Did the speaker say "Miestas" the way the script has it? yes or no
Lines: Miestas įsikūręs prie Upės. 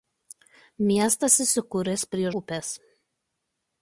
yes